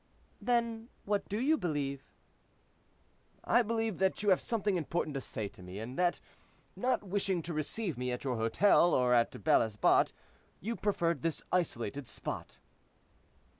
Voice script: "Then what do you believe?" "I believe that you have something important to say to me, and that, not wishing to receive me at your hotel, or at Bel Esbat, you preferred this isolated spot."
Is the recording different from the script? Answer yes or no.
no